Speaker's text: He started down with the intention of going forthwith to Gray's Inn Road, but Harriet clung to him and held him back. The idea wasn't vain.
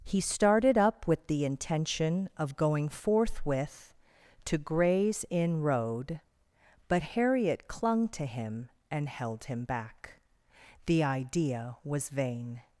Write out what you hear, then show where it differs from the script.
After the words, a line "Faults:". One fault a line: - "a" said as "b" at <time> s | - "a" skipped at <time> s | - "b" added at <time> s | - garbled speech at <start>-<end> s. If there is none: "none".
He started up with the intention of going forthwith to Gray's Inn Road, but Harriet clung to him and held him back. The idea was vain.
Faults:
- "down" said as "up" at 0.8 s
- "wasn't" said as "was" at 11.8 s